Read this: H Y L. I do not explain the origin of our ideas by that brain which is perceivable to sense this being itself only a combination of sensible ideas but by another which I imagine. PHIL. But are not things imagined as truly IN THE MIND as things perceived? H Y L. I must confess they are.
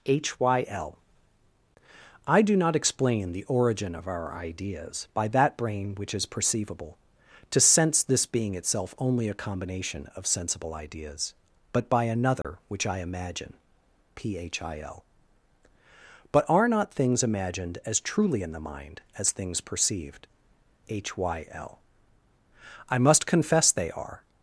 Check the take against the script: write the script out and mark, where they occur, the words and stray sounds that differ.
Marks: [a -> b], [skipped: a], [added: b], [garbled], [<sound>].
H Y L. I do not explain the origin of our ideas by that brain which is perceivable to sense this being itself only a combination of sensible ideas but by another [dropout] which I imagine. PHIL. But are not things imagined as truly IN THE MIND as things perceived? H Y L. I must confess they are.